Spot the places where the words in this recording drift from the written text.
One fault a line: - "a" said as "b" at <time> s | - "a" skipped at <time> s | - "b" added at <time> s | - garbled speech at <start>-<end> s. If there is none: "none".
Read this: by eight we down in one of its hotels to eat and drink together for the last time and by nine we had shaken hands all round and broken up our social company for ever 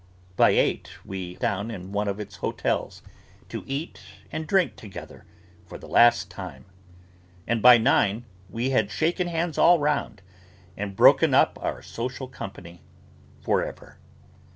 none